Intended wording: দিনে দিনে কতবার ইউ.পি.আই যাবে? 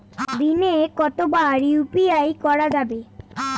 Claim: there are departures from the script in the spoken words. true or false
true